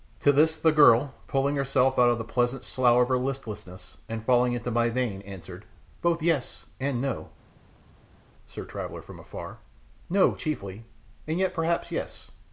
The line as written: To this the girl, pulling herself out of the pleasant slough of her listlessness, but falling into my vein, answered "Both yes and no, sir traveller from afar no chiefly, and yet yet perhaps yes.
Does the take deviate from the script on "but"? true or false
true